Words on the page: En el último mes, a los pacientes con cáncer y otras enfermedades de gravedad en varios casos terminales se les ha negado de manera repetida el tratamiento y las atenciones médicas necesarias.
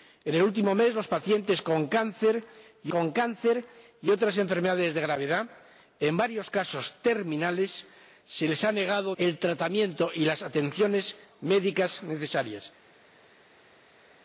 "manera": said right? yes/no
no